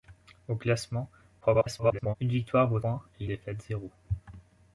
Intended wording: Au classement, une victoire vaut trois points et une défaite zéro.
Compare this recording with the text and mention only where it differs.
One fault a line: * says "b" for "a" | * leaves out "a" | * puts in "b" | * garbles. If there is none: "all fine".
* garbles
* leaves out "trois"
* leaves out "une"